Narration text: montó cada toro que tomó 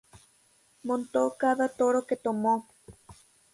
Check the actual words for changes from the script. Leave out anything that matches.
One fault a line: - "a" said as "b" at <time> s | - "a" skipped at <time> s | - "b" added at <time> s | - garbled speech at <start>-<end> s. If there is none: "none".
none